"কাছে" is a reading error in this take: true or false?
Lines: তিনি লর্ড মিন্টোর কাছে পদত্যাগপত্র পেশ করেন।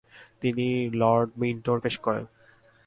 true